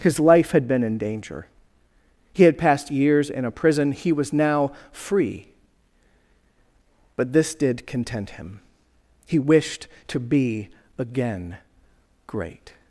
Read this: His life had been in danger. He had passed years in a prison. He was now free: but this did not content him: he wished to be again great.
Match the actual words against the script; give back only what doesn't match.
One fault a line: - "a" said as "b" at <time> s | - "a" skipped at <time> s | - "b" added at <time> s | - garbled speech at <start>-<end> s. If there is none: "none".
- "not" skipped at 7.8 s